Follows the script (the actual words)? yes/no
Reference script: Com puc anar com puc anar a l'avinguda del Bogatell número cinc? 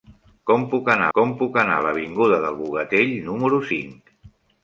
yes